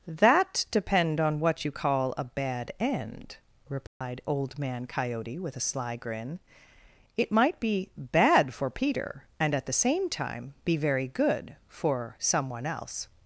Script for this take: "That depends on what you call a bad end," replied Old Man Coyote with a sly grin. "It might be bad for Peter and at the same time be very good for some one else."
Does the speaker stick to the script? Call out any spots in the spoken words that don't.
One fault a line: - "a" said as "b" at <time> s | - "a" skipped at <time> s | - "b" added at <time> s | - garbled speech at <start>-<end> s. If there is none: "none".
- "depends" said as "depend" at 0.7 s